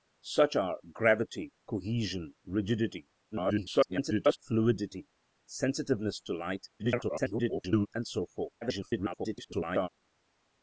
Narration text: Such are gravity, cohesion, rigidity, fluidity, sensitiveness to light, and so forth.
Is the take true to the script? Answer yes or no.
no